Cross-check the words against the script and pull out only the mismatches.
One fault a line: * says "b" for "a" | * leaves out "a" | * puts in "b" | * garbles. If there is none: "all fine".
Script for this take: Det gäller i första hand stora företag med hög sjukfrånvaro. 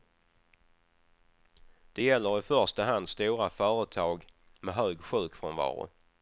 all fine